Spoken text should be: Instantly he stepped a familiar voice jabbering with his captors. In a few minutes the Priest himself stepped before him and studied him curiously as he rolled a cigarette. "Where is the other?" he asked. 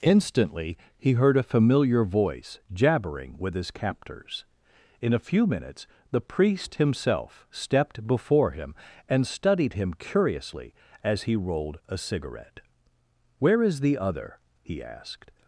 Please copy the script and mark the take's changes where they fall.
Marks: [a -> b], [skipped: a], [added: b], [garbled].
Instantly he [stepped -> heard] a familiar voice jabbering with his captors. In a few minutes the Priest himself stepped before him and studied him curiously as he rolled a cigarette. "Where is the other?" he asked.